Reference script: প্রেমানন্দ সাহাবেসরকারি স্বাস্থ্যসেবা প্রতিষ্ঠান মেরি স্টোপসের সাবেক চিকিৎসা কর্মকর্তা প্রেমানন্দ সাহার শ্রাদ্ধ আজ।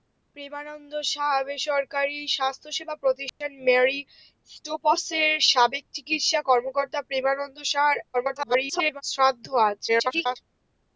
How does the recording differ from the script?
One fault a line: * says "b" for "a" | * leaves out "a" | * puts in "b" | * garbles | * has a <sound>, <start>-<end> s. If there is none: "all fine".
* has a dropout, 3.3-3.4 s
* garbles
* garbles